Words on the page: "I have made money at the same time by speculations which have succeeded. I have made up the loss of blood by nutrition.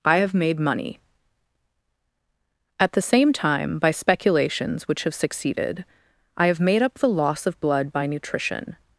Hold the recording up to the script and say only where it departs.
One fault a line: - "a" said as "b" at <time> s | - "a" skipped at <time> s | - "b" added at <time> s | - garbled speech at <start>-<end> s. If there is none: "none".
none